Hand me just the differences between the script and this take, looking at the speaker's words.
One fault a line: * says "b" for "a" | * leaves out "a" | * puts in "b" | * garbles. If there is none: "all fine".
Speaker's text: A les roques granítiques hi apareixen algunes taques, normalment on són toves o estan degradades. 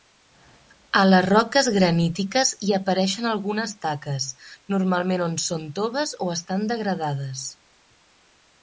all fine